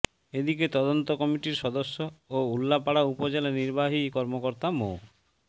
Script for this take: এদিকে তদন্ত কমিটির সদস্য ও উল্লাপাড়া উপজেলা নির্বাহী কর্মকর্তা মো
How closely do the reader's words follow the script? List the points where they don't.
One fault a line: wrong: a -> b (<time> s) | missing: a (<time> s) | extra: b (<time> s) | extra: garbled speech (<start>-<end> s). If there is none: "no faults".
no faults